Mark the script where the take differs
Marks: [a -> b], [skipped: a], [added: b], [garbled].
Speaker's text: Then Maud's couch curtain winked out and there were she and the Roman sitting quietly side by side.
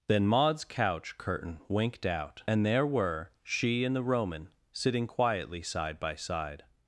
Then Maud's couch curtain winked out and there were she and the Roman sitting quietly side by side.